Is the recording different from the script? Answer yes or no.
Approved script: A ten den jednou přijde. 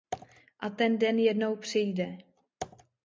no